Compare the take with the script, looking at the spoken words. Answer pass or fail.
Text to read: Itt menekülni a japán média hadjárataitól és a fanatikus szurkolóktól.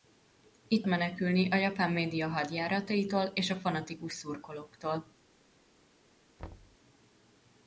pass